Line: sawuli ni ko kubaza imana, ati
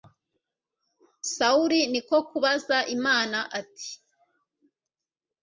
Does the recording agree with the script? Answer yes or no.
yes